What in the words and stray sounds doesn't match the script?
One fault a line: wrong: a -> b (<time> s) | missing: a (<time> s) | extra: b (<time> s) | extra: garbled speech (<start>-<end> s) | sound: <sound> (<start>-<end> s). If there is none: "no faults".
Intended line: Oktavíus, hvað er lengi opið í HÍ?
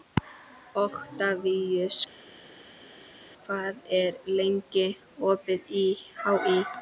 no faults